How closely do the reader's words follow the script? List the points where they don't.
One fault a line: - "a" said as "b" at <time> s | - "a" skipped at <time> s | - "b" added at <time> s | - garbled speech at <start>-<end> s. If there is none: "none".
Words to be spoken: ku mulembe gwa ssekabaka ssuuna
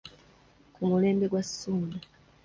- "ssekabaka" skipped at 1.4 s